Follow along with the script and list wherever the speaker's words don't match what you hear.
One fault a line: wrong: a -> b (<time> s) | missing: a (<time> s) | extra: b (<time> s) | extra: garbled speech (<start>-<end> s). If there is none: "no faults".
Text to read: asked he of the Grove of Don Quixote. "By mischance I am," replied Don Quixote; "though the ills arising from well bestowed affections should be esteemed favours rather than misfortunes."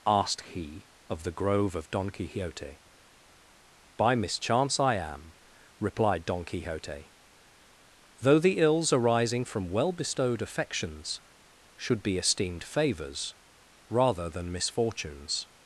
no faults